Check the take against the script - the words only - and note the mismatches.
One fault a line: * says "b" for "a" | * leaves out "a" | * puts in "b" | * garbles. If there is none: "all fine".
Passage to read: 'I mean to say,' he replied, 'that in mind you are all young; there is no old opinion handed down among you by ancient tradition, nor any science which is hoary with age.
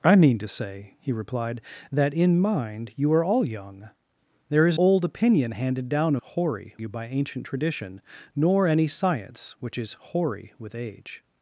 * leaves out "no"
* says "hoary" for "among"